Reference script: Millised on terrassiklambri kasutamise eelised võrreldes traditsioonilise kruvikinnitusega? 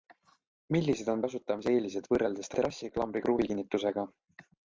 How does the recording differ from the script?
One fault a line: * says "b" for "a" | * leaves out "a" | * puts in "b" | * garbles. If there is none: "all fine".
* leaves out "terrassiklambri"
* says "terrassiklambri" for "traditsioonilise"